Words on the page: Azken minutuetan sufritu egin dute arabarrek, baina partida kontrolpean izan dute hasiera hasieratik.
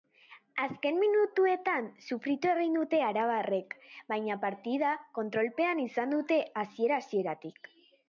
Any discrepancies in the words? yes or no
no